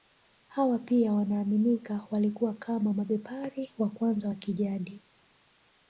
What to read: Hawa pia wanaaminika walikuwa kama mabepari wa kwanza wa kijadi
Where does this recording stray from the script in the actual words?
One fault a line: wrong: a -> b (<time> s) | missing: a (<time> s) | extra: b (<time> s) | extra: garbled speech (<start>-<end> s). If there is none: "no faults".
no faults